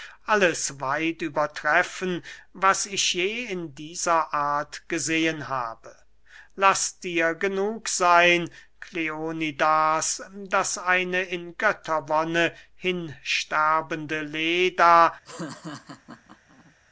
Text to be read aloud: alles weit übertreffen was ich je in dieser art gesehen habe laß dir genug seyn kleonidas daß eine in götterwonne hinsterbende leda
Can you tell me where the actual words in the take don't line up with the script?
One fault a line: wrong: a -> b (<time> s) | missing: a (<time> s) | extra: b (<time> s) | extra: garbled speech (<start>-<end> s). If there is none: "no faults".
no faults